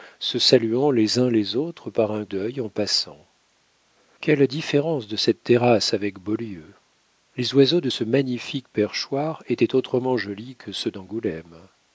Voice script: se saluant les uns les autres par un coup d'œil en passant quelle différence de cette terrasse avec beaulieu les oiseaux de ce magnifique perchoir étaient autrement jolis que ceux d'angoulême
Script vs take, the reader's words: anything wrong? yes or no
yes